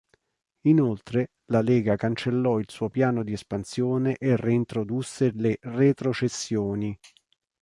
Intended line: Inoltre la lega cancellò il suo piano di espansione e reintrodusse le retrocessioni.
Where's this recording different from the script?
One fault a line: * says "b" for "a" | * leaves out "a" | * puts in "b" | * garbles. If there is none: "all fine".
all fine